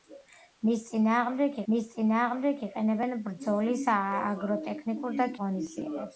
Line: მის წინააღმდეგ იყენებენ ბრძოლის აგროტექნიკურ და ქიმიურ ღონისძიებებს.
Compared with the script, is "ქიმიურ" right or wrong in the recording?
wrong